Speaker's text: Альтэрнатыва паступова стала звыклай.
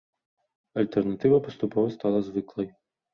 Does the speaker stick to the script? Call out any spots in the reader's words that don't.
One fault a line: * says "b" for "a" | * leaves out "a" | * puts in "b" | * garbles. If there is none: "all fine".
all fine